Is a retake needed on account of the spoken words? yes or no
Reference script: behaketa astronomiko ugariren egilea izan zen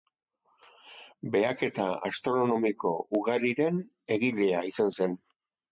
no